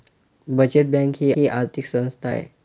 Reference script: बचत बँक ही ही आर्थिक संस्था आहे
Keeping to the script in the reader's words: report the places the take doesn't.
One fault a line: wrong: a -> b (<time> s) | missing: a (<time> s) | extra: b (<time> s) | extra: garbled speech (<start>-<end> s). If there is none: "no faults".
no faults